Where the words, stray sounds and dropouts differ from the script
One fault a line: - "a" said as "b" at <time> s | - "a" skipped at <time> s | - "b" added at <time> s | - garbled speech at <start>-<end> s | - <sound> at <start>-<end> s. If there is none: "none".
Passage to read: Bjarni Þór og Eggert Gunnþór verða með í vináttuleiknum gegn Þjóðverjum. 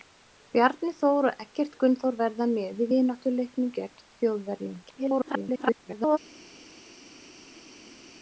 - garbled speech at 4.8-6.2 s